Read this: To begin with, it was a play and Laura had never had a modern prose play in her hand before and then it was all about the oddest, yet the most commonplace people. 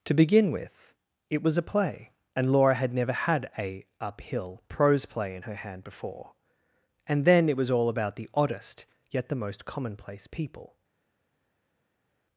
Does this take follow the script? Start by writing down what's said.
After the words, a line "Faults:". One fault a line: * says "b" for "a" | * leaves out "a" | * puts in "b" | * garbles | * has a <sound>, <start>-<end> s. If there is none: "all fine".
To begin with, it was a play and Laura had never had a uphill prose play in her hand before and then it was all about the oddest, yet the most commonplace people.
Faults:
* says "uphill" for "modern"